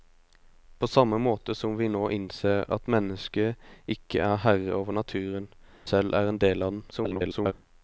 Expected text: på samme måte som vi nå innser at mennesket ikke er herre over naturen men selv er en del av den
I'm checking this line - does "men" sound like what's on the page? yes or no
no